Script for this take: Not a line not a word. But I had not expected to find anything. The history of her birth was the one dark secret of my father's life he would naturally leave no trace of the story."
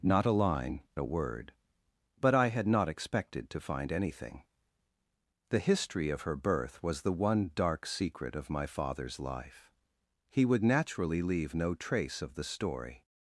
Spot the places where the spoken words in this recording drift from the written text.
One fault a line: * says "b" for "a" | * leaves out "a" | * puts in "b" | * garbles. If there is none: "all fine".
* leaves out "not"